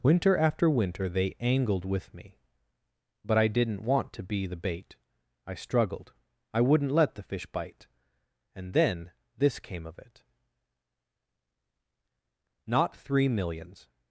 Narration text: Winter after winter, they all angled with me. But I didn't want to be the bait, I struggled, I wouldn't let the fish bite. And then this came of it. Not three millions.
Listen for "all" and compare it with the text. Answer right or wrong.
wrong